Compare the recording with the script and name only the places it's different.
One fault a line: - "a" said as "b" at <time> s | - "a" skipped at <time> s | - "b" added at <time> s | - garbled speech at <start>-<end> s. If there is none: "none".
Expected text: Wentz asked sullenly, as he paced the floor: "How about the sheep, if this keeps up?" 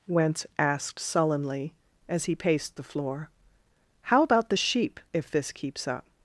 none